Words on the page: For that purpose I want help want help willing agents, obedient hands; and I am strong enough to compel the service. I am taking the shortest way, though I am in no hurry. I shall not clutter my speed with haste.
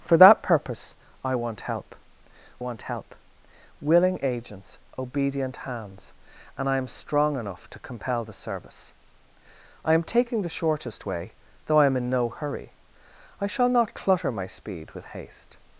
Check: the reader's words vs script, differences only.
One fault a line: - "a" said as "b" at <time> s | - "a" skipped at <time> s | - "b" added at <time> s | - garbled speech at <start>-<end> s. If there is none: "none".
none